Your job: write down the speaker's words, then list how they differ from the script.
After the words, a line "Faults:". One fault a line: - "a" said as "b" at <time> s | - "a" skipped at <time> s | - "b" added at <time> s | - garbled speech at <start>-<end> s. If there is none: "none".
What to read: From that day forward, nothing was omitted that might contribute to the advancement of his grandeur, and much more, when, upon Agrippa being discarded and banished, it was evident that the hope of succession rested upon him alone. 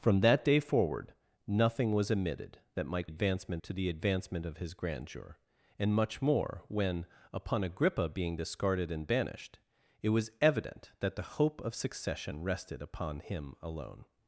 From that day forward, nothing was omitted that might advancement to the advancement of his grandeur, and much more, when, upon Agrippa being discarded and banished, it was evident that the hope of succession rested upon him alone.
Faults:
- "contribute" said as "advancement" at 3.0 s